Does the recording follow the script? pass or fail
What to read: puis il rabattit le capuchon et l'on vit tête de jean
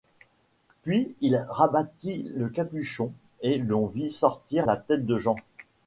fail